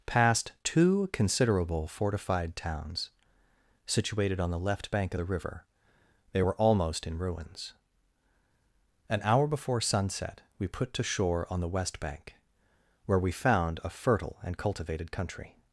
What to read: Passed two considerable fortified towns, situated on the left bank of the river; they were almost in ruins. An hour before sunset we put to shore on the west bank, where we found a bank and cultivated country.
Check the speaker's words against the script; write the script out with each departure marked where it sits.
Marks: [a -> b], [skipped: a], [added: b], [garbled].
Passed two considerable fortified towns, situated on the left bank of the river; they were almost in ruins. An hour before sunset we put to shore on the west bank, where we found a [bank -> fertile] and cultivated country.